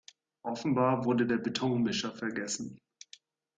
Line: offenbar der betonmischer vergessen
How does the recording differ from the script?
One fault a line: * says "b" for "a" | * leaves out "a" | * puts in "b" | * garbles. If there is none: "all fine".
* puts in "wurde"